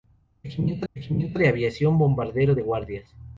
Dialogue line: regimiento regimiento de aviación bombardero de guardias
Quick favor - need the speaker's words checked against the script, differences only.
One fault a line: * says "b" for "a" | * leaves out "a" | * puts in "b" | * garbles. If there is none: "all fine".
all fine